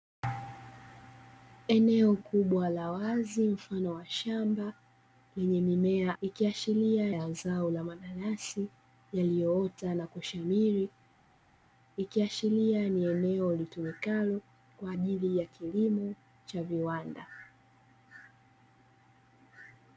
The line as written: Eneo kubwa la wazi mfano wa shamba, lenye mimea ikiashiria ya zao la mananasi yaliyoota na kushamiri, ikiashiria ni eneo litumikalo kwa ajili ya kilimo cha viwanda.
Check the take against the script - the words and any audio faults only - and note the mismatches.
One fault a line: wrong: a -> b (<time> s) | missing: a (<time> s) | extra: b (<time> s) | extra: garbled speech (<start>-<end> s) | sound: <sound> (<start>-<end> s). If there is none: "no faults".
no faults